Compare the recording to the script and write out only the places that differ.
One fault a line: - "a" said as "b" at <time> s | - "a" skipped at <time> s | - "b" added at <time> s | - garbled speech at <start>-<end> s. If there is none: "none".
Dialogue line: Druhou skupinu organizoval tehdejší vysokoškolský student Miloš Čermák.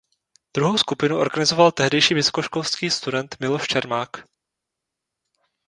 none